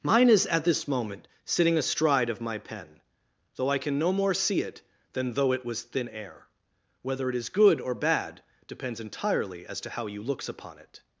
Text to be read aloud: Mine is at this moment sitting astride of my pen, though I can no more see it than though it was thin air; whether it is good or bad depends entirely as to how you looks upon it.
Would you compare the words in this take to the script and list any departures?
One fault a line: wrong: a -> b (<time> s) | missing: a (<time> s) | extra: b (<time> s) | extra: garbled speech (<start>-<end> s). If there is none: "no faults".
no faults